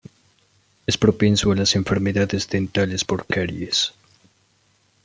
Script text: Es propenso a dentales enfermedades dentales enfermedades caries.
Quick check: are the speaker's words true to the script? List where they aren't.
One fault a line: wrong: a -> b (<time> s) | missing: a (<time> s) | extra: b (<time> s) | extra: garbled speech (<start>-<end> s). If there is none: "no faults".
wrong: dentales -> las (1.6 s)
wrong: enfermedades -> por (3.0 s)